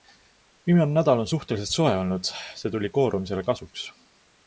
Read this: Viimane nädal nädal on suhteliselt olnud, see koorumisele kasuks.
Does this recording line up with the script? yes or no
no